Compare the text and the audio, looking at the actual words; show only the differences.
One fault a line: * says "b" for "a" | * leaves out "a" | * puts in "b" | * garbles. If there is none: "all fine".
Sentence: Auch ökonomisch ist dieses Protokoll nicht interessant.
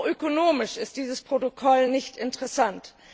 all fine